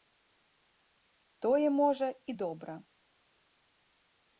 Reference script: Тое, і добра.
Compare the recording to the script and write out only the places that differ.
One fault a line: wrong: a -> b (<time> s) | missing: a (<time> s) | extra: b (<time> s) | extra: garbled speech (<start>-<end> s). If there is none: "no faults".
extra: можа (1.7 s)